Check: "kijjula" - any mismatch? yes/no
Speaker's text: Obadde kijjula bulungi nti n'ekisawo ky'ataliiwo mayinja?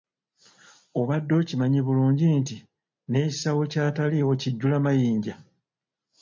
yes